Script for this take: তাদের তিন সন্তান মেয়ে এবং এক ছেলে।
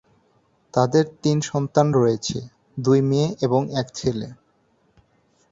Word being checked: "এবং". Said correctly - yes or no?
yes